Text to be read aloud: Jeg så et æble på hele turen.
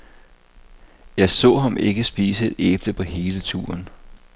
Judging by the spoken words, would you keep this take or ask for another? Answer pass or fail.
fail